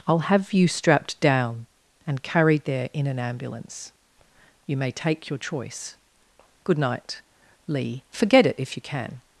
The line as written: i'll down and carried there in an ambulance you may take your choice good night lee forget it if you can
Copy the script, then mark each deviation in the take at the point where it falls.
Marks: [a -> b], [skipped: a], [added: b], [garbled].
i'll [added: have you strapped] down and carried there in an ambulance you may take your choice good night lee forget it if you can